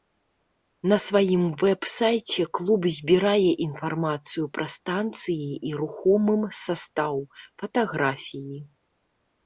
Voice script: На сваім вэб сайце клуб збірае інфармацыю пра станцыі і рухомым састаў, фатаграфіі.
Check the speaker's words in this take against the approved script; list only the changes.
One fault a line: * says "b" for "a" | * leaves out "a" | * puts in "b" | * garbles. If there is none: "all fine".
all fine